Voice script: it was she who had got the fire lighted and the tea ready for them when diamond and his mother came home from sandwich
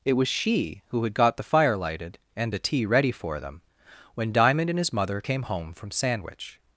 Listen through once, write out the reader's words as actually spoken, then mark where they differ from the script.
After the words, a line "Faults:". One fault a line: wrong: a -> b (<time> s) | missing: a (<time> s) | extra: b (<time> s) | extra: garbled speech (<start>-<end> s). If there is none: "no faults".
it was she who had got the fire lighted and the tea ready for them when diamond and his mother came home from sandwich
Faults:
no faults